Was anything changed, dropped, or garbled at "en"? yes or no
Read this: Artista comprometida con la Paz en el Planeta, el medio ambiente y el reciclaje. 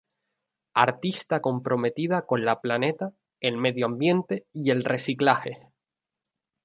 yes